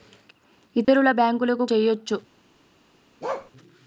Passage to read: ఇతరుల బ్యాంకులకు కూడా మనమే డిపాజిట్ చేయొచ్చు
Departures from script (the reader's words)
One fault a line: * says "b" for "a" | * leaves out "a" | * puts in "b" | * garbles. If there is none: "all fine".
* leaves out "కూడా మనమే డిపాజిట్"